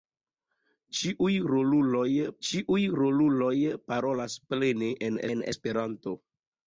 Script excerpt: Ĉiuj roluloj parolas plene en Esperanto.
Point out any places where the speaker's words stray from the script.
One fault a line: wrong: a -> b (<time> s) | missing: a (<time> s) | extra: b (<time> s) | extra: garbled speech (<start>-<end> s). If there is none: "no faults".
extra: ĉiuj roluloj (2.5 s)
extra: en (5.4 s)